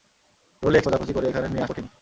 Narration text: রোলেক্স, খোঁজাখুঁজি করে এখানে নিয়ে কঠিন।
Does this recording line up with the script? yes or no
yes